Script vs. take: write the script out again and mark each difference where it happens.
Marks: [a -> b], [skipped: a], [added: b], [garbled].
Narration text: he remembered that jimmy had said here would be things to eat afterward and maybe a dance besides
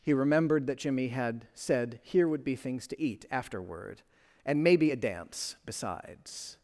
he remembered that jimmy had said here would be things to eat afterward and maybe a dance besides